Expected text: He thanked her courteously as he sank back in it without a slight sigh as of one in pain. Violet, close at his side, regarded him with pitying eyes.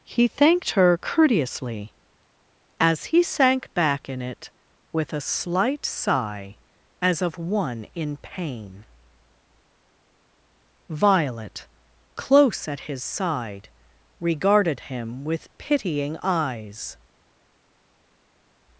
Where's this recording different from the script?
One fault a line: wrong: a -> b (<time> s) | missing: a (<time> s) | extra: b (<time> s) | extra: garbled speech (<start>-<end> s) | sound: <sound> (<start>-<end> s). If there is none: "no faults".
wrong: without -> with (4.9 s)